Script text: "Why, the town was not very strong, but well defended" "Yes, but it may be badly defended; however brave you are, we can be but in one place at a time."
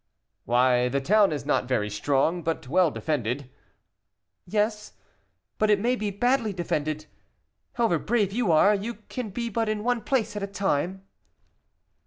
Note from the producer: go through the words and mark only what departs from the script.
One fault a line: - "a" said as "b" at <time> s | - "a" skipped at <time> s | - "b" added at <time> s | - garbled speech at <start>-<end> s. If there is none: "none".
- "was" said as "is" at 1.3 s
- "we" said as "you" at 8.7 s